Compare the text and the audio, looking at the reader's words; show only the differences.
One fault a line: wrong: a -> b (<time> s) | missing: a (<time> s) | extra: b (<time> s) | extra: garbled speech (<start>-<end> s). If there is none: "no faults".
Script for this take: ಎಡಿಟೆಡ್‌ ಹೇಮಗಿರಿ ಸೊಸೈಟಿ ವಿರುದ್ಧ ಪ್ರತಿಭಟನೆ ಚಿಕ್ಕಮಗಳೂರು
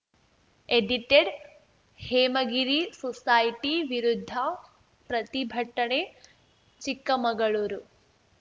no faults